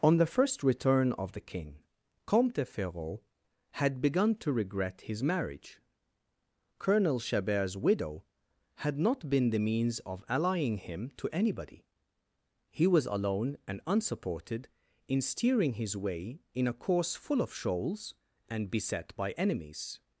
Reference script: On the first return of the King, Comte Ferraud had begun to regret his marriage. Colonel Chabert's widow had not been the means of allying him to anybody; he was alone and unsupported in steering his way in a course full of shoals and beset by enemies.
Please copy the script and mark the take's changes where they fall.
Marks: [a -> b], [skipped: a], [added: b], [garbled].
On the first return of the King, Comte Ferraud had begun to regret his marriage. Colonel Chabert's widow had not been the means of allying him to anybody; he was alone and unsupported in steering his way in a course full of shoals and beset by enemies.